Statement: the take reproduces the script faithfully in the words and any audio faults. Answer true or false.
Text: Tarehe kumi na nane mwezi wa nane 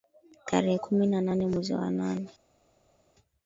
true